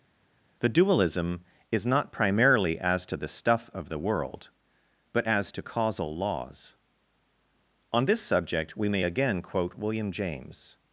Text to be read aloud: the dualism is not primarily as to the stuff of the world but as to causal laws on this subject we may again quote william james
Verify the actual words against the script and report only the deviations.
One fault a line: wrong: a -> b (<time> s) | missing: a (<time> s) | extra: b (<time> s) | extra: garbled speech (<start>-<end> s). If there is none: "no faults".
no faults